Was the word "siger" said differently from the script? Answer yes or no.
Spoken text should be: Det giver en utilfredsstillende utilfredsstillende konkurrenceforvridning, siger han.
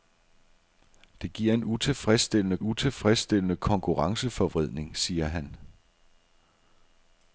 no